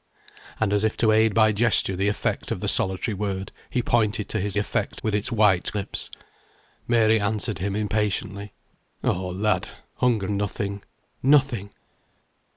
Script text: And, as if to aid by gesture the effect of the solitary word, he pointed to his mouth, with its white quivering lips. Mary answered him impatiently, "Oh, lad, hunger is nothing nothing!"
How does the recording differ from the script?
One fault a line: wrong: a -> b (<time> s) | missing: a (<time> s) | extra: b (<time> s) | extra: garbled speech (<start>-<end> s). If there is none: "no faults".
wrong: mouth -> effect (4.6 s)
missing: quivering (5.7 s)
missing: is (10.3 s)